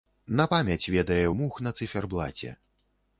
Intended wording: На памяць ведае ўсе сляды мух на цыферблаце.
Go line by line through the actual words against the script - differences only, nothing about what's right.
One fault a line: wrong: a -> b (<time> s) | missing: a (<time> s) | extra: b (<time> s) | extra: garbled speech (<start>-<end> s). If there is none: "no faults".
missing: ўсе сляды (1.2 s)